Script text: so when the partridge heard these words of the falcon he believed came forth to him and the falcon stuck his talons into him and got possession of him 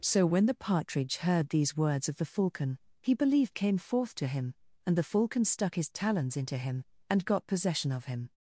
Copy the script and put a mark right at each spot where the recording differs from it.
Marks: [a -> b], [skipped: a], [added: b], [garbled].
so when the partridge heard these words of the falcon he believed came forth to him and the falcon stuck his talons into him and got possession of him